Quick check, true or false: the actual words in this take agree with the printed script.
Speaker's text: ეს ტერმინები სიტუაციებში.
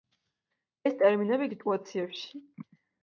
true